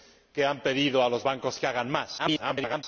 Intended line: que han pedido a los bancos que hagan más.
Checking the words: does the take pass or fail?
fail